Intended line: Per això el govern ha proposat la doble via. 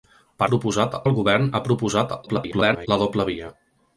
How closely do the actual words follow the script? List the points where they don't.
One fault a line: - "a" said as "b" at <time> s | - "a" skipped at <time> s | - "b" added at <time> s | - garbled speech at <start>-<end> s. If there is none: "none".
- "això" said as "proposat" at 0.5 s
- garbled speech at 2.3-2.9 s